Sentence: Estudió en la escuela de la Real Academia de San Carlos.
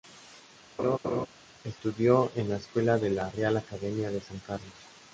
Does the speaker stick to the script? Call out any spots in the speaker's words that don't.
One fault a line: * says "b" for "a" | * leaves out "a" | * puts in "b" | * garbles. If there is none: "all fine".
all fine